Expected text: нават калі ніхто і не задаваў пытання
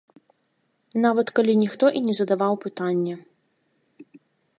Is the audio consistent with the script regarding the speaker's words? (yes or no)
yes